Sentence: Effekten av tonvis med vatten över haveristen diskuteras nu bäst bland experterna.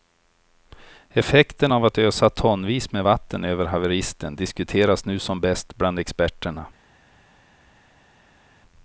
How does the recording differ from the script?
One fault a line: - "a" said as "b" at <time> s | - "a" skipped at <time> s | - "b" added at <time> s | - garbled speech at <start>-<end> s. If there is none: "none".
- "att ösa" added at 1.9 s
- "som" added at 5.2 s